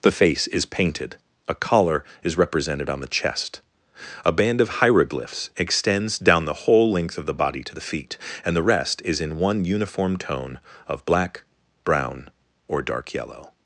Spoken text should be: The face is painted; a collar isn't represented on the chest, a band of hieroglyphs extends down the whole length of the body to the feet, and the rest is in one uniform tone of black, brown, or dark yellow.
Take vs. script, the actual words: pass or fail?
fail